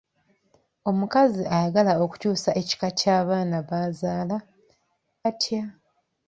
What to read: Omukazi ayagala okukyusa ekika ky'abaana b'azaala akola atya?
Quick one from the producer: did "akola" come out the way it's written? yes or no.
no